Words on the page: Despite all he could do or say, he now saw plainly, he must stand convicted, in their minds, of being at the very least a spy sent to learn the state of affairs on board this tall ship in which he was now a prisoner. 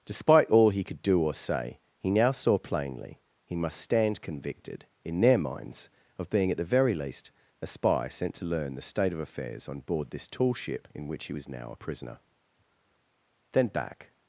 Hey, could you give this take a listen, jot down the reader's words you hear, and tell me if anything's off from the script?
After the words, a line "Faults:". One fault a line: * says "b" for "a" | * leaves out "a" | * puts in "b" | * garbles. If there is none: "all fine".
Despite all he could do or say, he now saw plainly, he must stand convicted, in their minds, of being at the very least a spy sent to learn the state of affairs on board this tall ship in which he was now a prisoner. Then back
Faults:
* puts in "Then back"